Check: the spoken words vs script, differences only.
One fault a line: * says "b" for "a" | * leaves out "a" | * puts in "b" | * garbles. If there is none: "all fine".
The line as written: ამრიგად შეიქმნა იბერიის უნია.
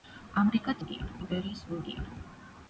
* says "უნია" for "შეიქმნა"